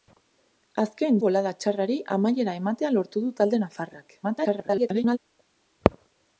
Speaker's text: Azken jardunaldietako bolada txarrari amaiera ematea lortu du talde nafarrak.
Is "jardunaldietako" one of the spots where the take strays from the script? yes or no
yes